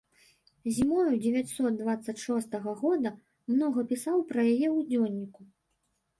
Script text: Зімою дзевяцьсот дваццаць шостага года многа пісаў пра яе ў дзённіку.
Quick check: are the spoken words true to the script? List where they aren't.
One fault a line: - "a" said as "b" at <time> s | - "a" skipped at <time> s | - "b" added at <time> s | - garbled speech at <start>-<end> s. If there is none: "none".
none